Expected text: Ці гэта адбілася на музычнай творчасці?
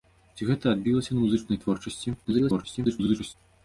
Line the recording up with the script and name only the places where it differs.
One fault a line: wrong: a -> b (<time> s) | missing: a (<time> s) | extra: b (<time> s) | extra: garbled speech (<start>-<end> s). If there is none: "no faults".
extra: garbled speech (2.2-3.3 s)